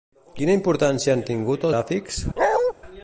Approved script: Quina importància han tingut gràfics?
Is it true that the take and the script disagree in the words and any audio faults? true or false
true